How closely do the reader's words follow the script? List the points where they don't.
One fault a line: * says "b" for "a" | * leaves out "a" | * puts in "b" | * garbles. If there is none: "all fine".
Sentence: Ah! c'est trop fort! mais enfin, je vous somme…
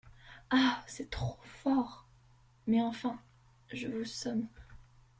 all fine